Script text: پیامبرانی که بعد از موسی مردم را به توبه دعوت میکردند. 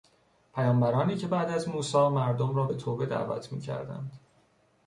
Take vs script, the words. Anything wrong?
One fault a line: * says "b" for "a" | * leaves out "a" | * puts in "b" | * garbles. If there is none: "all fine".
all fine